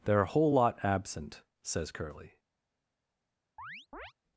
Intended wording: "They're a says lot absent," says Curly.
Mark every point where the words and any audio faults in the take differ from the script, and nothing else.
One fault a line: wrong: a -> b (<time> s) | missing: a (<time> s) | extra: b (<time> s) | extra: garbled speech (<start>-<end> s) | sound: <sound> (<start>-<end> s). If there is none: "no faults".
wrong: says -> whole (0.2 s)
sound: chirp (3.6-4.1 s)